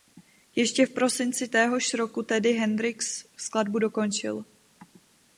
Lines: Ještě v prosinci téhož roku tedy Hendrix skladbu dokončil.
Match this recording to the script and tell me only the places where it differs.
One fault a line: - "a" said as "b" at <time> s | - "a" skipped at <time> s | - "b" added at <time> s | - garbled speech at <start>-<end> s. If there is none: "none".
none